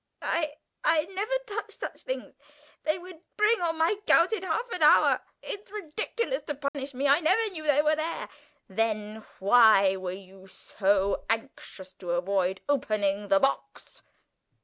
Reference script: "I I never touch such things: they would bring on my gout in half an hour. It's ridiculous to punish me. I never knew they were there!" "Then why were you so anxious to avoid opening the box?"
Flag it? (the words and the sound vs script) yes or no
yes